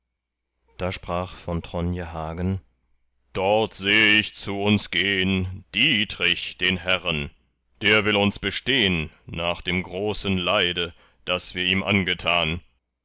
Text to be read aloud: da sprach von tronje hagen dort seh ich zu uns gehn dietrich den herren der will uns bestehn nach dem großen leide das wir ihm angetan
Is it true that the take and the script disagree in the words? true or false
false